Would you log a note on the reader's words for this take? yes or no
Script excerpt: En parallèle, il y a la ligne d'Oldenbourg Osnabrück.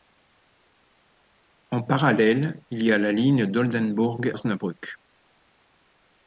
no